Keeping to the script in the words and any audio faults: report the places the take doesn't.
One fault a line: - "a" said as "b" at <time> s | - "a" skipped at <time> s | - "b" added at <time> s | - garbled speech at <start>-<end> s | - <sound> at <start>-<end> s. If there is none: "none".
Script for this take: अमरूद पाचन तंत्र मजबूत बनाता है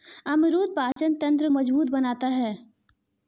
- dropout at 0.9-1.0 s